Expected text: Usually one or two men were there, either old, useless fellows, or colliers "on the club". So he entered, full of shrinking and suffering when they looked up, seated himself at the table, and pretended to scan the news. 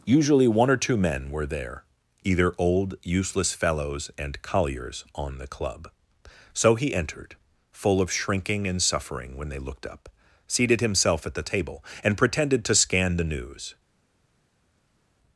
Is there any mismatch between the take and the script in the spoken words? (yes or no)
yes